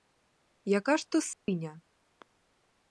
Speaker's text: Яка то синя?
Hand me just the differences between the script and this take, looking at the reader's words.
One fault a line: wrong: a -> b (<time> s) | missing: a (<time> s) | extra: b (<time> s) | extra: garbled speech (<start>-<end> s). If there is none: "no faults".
extra: ж (1.0 s)